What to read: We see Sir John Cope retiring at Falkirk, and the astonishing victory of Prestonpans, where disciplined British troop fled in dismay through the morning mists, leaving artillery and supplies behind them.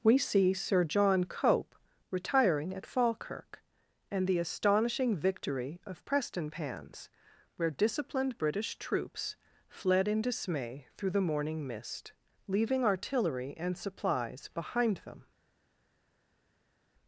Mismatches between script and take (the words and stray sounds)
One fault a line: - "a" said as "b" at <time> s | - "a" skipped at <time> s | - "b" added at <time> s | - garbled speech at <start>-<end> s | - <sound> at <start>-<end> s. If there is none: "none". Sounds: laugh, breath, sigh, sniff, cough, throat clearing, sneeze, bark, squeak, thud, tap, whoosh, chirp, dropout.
- "troop" said as "troops" at 8.8 s
- "mists" said as "mist" at 11.7 s